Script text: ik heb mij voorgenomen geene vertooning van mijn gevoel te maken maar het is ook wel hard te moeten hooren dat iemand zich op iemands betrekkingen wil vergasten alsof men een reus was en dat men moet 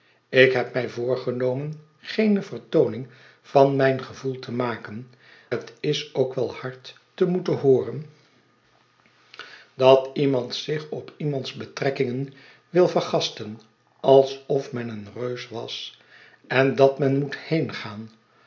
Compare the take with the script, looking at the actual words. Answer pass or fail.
fail